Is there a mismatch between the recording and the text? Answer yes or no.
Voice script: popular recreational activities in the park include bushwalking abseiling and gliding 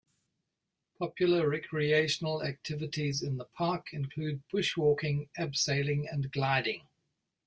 no